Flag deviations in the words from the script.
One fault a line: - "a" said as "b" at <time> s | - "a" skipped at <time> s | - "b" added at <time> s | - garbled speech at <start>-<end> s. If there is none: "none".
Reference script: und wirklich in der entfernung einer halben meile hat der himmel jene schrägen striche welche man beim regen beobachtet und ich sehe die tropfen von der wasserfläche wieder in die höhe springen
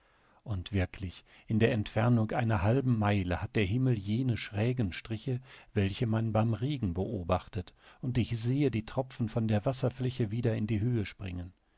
none